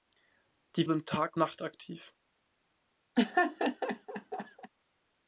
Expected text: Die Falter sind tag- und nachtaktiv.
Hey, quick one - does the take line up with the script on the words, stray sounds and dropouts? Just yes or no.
no